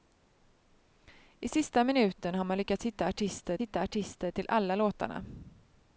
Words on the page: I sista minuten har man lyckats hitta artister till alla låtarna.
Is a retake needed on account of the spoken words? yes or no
yes